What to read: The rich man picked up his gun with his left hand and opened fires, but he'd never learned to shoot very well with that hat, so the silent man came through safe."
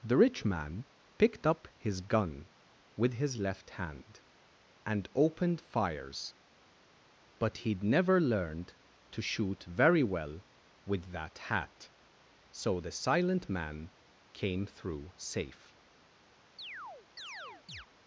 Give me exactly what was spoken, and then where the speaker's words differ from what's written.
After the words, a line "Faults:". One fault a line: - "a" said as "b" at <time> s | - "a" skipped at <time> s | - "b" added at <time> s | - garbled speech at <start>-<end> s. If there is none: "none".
The rich man picked up his gun with his left hand and opened fires, but he'd never learned to shoot very well with that hat, so the silent man came through safe."
Faults:
none